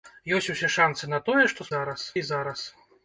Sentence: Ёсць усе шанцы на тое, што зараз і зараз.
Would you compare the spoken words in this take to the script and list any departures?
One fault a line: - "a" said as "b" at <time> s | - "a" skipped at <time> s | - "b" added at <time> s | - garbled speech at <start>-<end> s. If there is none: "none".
none